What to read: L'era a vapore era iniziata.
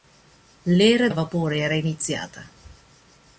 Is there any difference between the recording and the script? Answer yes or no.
no